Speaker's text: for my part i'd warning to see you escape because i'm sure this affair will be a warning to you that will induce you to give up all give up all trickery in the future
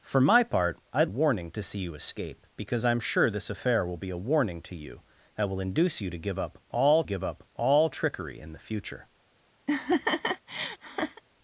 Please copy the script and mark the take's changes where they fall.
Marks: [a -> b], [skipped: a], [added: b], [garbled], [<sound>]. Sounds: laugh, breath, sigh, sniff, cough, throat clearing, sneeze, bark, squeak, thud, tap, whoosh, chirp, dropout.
for my part i'd warning to see you escape because i'm sure this affair will be a warning to you that will induce you to give up all give up all trickery in the future [laugh]